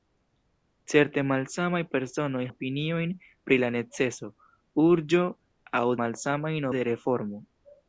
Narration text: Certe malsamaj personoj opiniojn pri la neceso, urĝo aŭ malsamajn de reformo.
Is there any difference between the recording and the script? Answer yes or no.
no